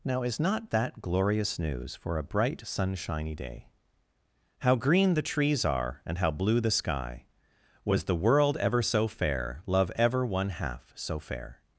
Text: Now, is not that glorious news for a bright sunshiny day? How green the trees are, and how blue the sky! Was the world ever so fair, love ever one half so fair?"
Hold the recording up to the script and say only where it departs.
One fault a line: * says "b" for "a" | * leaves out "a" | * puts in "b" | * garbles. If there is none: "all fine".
all fine